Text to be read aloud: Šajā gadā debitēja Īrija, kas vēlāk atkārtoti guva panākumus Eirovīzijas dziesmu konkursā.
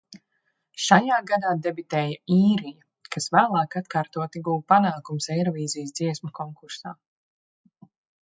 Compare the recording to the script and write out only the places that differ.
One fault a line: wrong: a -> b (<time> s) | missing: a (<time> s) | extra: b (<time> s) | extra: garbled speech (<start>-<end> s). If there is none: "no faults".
no faults